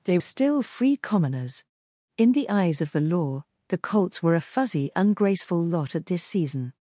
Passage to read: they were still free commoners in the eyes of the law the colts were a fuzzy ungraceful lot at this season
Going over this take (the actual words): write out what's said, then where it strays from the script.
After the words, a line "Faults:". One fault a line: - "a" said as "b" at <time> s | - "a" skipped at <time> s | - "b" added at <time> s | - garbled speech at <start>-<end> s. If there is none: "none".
they still free commoners in the eyes of the law the colts were a fuzzy ungraceful lot at this season
Faults:
- "were" skipped at 0.2 s